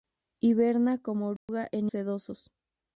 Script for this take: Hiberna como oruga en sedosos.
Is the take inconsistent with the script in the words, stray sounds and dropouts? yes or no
yes